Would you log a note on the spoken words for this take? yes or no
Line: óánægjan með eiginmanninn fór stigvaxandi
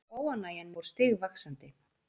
yes